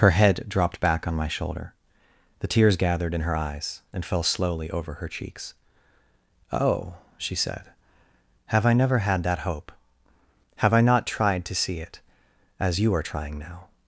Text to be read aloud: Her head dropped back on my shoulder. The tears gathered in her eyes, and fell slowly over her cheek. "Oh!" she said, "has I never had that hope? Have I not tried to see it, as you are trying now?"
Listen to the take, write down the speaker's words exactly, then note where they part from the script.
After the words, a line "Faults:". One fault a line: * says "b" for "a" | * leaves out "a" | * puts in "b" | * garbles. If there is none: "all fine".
Her head dropped back on my shoulder. The tears gathered in her eyes, and fell slowly over her cheeks. "Oh!" she said, "have I never had that hope? Have I not tried to see it, as you are trying now?"
Faults:
* says "cheeks" for "cheek"
* says "have" for "has"